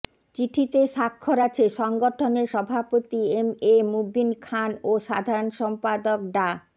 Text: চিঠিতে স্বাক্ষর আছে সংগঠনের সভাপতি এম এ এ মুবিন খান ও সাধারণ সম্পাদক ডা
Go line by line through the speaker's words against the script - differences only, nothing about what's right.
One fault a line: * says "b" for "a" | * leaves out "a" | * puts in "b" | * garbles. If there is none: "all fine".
* leaves out "এ"